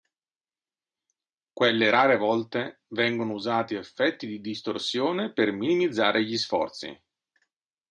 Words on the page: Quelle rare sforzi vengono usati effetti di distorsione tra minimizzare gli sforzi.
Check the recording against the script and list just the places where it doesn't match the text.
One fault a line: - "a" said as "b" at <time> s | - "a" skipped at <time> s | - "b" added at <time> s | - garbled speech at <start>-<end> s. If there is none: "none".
- "sforzi" said as "volte" at 2.2 s
- "tra" said as "per" at 5.3 s